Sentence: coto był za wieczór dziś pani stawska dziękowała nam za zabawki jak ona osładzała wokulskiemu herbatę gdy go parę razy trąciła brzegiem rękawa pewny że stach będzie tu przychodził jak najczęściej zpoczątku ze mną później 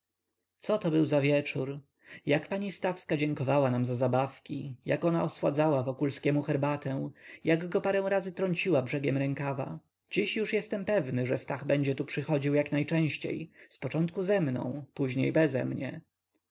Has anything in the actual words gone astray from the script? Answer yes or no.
yes